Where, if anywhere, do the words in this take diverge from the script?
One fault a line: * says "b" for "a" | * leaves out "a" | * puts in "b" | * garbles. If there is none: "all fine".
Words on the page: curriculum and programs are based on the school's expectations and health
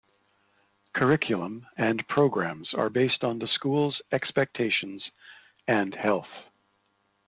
all fine